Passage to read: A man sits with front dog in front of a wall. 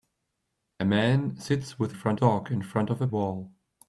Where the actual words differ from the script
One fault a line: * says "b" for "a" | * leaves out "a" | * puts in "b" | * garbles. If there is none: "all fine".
all fine